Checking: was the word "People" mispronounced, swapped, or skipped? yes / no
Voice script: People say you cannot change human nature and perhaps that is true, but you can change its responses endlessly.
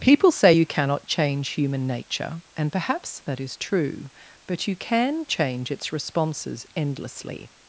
no